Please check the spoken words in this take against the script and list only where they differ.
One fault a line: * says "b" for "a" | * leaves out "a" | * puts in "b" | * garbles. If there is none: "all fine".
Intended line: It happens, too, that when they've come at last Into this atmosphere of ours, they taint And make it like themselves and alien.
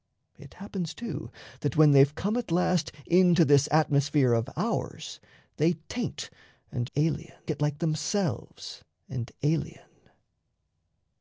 * says "alien" for "make"